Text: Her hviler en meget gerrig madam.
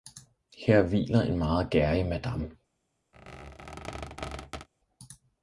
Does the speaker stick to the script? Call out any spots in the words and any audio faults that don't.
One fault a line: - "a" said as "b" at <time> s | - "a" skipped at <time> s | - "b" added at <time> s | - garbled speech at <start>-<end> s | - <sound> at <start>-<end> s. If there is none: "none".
- squeak at 3.1-4.7 s